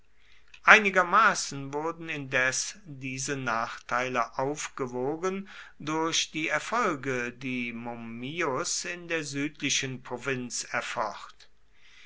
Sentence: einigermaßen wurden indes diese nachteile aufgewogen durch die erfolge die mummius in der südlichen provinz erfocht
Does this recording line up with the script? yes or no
yes